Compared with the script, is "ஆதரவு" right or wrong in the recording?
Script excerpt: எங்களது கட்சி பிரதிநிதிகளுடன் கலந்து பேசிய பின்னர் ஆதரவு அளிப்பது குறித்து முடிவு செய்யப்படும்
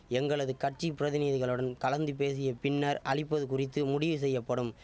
wrong